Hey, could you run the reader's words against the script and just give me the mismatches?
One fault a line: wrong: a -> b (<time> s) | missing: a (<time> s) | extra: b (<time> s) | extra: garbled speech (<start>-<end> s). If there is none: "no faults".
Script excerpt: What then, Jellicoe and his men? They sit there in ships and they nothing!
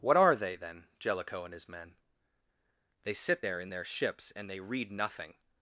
extra: are they (0.2 s)
extra: their (3.7 s)
extra: read (4.6 s)